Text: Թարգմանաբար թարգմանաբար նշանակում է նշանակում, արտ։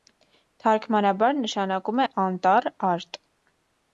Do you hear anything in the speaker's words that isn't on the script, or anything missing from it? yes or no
yes